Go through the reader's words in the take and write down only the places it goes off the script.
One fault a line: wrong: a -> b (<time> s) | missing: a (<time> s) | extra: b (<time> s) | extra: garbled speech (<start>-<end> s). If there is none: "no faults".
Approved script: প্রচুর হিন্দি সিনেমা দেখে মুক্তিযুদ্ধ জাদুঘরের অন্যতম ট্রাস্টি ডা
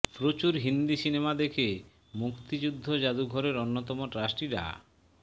no faults